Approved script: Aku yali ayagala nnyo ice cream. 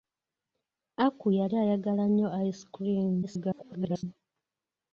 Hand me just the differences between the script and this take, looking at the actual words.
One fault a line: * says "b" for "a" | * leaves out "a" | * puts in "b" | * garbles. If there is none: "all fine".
* garbles